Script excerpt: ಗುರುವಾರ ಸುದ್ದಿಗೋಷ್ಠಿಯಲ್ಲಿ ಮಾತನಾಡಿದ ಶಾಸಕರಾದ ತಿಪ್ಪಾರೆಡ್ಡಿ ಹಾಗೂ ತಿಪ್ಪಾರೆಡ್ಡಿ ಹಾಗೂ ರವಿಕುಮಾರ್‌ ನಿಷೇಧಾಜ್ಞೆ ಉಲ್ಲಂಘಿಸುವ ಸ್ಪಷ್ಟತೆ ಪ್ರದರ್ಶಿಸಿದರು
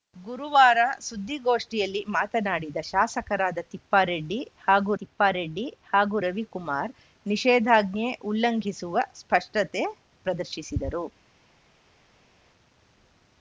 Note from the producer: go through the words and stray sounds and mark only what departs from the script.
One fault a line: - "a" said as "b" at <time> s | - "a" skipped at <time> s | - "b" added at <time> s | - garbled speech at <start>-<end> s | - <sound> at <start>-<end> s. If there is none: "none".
none